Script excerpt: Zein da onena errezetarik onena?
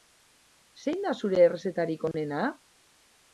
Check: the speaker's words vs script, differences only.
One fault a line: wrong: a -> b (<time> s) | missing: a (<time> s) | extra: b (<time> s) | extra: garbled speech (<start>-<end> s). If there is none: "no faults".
wrong: onena -> zure (1.2 s)